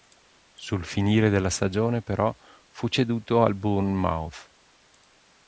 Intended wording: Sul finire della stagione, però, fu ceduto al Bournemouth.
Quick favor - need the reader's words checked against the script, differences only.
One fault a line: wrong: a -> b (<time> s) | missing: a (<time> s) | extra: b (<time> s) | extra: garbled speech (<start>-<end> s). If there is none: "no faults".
no faults